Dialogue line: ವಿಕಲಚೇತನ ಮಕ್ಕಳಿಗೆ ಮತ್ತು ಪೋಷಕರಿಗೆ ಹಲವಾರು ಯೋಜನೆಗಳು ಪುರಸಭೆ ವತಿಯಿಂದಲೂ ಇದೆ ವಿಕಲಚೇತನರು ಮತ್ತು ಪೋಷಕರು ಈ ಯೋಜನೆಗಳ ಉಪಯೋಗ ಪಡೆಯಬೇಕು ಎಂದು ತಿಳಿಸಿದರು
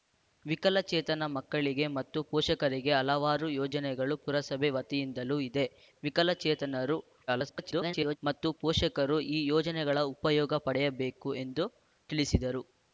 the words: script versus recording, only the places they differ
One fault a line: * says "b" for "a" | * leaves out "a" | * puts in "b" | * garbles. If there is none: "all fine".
* garbles